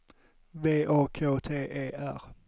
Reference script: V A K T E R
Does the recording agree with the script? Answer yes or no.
yes